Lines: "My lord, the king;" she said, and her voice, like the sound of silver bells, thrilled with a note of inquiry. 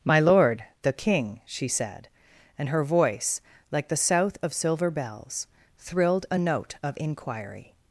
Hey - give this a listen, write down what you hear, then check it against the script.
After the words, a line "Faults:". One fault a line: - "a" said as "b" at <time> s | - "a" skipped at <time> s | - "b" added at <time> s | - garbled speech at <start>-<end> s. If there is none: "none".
"My lord, the king;" she said, and her voice, like the south of silver bells, thrilled a note of inquiry.
Faults:
- "sound" said as "south" at 4.0 s
- "with" skipped at 6.3 s